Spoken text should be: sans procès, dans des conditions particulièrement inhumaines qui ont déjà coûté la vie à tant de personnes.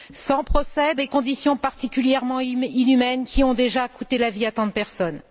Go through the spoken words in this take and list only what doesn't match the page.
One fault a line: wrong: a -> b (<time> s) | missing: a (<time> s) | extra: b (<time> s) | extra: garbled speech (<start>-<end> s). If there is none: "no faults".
missing: dans (0.9 s)